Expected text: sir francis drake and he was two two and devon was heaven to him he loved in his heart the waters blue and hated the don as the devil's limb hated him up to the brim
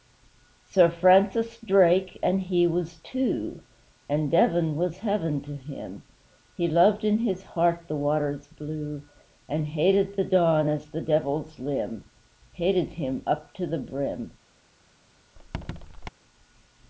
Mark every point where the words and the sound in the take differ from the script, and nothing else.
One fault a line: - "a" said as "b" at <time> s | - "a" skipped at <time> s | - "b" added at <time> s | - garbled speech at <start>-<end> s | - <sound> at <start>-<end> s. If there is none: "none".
- "two" skipped at 3.6 s
- squeak at 15.4-16.1 s